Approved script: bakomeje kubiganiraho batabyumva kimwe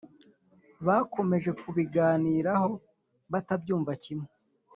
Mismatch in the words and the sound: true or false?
false